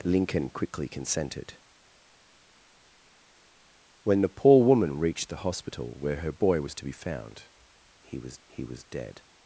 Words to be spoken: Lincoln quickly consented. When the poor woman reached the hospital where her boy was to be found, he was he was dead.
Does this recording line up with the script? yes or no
yes